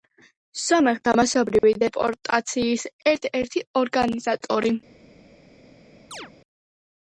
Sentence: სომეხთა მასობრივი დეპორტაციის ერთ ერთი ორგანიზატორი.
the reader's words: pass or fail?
pass